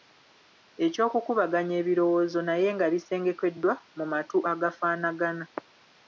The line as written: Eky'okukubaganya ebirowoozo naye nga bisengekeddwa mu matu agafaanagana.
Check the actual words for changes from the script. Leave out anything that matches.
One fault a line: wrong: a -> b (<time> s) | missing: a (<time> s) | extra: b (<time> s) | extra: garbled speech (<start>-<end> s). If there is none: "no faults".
no faults